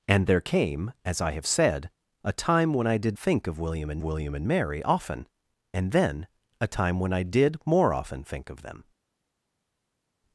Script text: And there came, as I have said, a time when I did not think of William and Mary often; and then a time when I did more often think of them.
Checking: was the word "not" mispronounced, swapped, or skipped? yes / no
yes